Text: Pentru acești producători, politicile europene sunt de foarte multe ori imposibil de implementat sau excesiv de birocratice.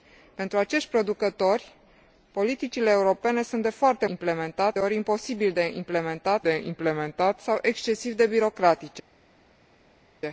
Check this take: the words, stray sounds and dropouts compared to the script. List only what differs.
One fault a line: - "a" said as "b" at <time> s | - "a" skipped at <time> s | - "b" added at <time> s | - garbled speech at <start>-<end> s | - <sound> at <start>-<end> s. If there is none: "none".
- "multe" said as "implementat" at 4.1 s
- "de implementat" added at 6.4 s